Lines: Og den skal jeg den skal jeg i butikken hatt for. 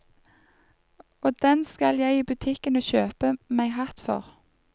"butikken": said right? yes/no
no